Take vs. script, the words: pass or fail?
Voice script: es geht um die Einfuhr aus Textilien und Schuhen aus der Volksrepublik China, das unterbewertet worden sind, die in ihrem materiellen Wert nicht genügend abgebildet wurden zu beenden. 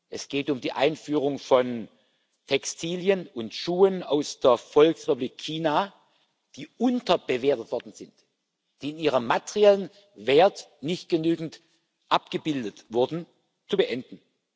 fail